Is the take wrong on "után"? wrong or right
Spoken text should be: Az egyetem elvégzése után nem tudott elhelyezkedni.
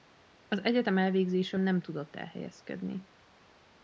wrong